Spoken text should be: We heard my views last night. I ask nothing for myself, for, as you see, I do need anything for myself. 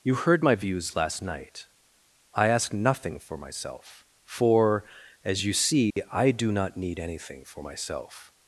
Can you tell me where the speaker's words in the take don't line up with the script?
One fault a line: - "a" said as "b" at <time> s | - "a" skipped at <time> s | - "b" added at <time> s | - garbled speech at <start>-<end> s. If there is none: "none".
- "We" said as "You" at 0.0 s
- "not" added at 6.5 s